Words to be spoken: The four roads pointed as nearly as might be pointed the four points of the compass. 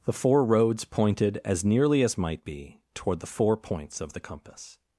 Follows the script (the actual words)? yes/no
no